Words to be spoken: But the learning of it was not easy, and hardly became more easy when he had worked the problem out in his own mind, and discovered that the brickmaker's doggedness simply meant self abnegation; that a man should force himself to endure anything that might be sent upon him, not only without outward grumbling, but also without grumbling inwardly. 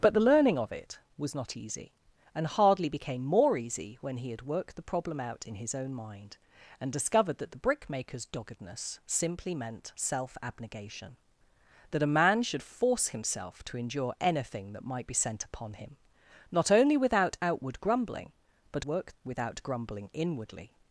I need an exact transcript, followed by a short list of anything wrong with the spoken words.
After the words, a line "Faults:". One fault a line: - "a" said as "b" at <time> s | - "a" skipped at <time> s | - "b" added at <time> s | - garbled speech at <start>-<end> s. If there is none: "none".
But the learning of it was not easy, and hardly became more easy when he had worked the problem out in his own mind, and discovered that the brickmaker's doggedness simply meant self abnegation; that a man should force himself to endure anything that might be sent upon him, not only without outward grumbling, but worked without grumbling inwardly.
Faults:
- "also" said as "worked" at 18.8 s